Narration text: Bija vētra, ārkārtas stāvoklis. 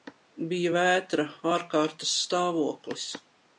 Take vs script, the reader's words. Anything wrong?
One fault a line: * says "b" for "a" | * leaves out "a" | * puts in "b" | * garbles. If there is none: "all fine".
all fine